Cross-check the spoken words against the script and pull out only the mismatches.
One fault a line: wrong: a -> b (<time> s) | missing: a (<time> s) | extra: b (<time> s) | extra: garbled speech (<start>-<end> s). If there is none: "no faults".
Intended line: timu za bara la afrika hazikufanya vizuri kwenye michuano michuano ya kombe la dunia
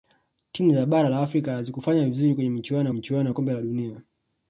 no faults